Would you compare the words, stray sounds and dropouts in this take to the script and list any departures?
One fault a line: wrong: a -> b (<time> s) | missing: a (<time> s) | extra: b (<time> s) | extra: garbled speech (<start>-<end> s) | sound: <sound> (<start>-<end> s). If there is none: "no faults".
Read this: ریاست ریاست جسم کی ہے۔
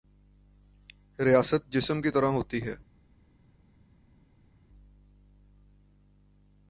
missing: ریاست (1.7 s)
extra: طرح ہوتی (2.1 s)